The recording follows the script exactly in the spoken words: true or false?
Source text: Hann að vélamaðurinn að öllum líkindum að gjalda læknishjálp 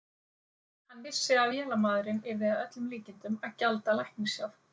false